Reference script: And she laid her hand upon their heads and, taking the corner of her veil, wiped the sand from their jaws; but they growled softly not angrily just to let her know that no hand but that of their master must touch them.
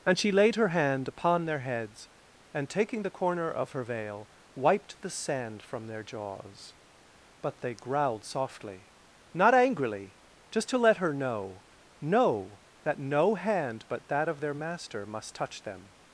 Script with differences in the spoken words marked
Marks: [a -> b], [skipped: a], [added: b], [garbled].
And she laid her hand upon their heads and, taking the corner of her veil, wiped the sand from their jaws; but they growled softly not angrily just to let her know [added: know] that no hand but that of their master must touch them.